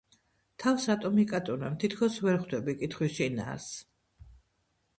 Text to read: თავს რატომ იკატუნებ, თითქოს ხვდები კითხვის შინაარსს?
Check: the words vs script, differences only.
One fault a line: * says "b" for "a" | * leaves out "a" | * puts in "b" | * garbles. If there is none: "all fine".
* puts in "ვერ"